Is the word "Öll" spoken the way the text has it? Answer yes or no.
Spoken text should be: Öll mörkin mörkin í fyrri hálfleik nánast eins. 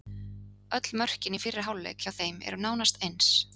yes